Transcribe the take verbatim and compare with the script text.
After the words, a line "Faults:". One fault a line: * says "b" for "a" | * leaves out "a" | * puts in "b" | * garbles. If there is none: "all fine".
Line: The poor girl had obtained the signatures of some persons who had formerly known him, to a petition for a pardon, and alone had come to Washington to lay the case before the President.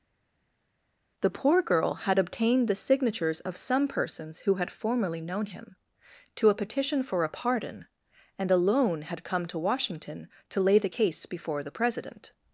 The poor girl had obtained the signatures of some persons who had formerly known him, to a petition for a pardon, and alone had come to Washington to lay the case before the President.
Faults:
all fine